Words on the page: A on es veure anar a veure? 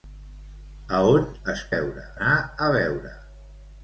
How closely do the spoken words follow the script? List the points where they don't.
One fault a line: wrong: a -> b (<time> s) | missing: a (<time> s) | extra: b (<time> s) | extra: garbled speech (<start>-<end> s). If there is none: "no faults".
no faults